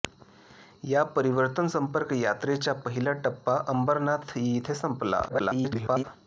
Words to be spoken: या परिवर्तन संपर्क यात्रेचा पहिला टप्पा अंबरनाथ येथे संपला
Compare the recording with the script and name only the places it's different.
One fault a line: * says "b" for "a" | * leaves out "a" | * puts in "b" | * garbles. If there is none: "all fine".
* garbles